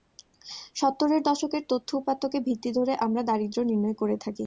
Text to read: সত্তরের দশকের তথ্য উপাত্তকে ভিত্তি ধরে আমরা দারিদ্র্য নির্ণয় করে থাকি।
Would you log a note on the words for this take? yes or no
no